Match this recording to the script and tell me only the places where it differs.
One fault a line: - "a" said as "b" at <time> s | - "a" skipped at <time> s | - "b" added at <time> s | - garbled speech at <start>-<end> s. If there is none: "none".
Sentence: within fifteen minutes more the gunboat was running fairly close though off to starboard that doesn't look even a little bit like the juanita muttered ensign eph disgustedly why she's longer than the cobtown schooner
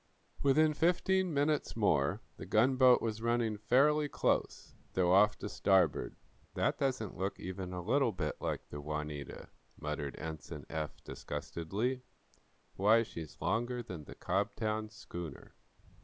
none